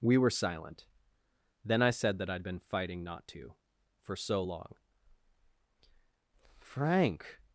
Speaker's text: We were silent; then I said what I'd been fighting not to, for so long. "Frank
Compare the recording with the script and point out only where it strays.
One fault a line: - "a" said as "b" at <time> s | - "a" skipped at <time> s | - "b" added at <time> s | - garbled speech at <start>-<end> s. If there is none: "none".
- "what" said as "that" at 2.2 s